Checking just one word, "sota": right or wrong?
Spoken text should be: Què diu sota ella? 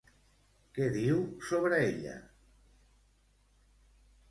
wrong